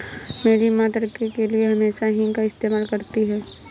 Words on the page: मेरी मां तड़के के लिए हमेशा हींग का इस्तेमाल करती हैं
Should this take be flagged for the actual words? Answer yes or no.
no